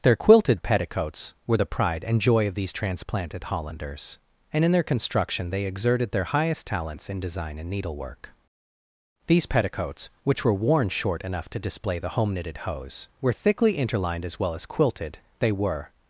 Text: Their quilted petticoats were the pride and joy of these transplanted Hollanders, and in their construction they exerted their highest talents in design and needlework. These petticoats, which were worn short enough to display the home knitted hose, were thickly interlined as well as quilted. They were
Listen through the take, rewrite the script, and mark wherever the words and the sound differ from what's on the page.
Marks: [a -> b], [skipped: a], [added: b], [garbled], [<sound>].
Their quilted petticoats were the pride and joy of these transplanted Hollanders, and in their construction they exerted their highest talents in design and needlework. These petticoats, which were worn short enough to display the home knitted hose, were thickly interlined as well as quilted. They were